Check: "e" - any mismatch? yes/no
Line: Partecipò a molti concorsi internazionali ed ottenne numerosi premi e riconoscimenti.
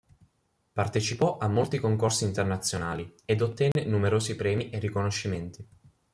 no